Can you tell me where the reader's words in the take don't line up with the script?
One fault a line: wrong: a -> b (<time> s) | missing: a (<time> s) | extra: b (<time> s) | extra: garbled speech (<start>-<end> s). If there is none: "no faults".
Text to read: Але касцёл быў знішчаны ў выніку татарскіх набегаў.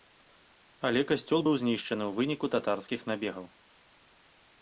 no faults